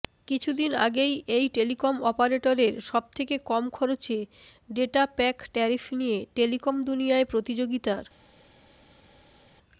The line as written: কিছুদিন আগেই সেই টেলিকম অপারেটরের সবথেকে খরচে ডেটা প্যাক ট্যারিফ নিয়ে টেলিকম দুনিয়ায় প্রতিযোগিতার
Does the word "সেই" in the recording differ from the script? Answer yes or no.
yes